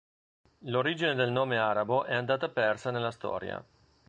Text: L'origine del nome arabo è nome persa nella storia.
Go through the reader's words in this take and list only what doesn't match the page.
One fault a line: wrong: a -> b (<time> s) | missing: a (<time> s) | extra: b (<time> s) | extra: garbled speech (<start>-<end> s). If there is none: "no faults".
wrong: nome -> andata (2.1 s)